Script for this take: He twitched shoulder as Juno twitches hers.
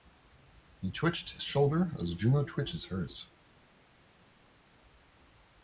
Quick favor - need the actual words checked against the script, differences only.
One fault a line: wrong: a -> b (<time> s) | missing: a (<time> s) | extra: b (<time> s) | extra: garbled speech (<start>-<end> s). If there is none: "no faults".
no faults